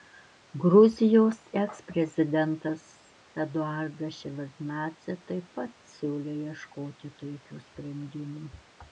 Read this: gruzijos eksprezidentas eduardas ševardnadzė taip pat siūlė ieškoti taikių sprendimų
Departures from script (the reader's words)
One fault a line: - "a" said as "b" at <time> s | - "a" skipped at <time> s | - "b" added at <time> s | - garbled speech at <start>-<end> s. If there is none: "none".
none